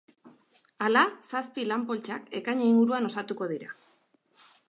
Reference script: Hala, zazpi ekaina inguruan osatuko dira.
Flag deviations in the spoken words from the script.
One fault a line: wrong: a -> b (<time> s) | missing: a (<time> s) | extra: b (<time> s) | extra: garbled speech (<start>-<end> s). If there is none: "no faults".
extra: lan poltsak (1.7 s)